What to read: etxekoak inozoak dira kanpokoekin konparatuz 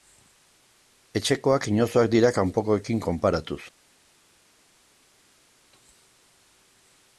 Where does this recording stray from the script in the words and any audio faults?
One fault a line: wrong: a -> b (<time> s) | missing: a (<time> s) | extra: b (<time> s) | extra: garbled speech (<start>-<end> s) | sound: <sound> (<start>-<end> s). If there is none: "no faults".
no faults